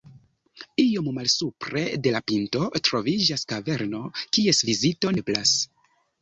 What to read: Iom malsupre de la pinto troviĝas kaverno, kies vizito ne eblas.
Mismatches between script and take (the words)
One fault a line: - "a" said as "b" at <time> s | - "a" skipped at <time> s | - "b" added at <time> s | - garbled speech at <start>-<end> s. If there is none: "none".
- "ne" skipped at 5.2 s